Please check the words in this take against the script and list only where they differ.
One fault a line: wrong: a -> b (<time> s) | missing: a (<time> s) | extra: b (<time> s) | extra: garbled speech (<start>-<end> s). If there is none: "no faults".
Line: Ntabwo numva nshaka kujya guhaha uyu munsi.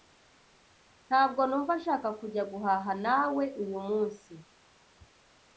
extra: nawe (3.0 s)